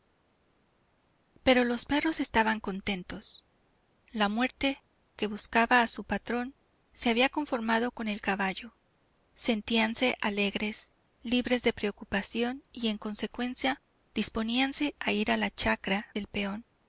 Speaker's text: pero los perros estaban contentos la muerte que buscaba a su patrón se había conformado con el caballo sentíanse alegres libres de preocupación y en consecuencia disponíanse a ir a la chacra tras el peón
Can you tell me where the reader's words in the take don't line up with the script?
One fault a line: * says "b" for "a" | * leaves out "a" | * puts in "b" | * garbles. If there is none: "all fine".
* leaves out "tras"